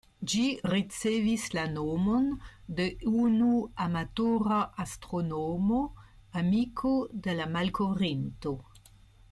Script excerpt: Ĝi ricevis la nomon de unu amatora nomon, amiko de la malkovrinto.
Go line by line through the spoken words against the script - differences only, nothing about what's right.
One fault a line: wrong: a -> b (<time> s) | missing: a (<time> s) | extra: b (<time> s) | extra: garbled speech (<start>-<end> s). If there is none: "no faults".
wrong: nomon -> astronomo (4.9 s)